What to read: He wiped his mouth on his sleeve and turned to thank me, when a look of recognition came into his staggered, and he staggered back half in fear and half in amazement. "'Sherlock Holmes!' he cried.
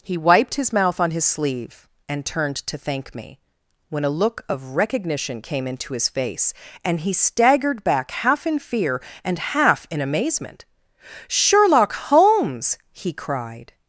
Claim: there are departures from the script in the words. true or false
true